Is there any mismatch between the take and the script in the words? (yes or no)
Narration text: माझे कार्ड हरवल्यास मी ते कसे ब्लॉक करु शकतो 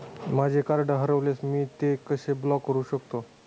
no